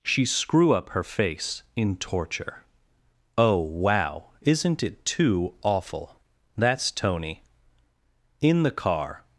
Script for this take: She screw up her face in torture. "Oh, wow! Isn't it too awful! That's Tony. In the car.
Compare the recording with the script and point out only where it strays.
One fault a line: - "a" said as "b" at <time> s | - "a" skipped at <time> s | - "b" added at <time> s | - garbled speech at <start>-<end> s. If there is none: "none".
none